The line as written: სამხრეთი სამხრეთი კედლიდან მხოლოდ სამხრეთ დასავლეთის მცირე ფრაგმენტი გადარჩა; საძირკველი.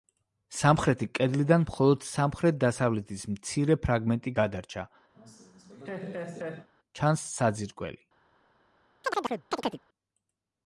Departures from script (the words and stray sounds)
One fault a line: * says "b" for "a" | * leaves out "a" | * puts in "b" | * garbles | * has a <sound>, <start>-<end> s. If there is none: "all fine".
* leaves out "სამხრეთი"
* has a laugh, 5.1-6.7 s
* puts in "ჩანს"
* has a chirp, 9.0-9.8 s